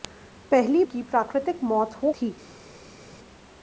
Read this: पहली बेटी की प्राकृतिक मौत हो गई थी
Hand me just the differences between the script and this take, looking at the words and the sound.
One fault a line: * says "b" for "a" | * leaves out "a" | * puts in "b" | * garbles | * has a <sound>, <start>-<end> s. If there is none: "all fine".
* leaves out "बेटी"
* leaves out "गई"